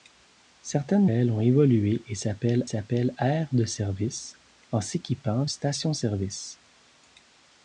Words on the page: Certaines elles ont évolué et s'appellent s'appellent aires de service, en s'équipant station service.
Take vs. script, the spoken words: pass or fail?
pass